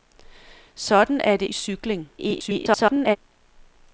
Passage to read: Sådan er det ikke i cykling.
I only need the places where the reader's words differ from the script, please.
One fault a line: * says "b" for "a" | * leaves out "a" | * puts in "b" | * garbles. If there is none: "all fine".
* leaves out "ikke"
* garbles